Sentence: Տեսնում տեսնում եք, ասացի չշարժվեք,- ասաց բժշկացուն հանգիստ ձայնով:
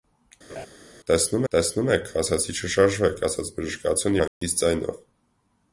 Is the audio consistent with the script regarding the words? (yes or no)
yes